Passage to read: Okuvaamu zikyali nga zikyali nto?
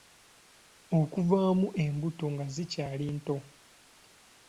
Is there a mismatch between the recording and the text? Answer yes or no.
yes